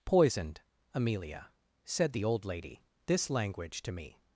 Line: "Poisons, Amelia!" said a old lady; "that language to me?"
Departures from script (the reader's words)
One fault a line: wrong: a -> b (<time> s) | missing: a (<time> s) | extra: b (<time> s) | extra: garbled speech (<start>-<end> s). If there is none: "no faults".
wrong: Poisons -> Poisoned (0.1 s)
wrong: a -> the (2.1 s)
wrong: that -> this (3.0 s)